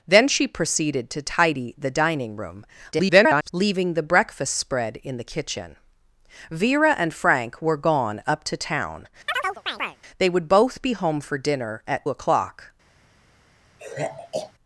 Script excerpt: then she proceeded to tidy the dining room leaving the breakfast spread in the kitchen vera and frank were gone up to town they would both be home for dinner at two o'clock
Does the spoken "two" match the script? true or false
false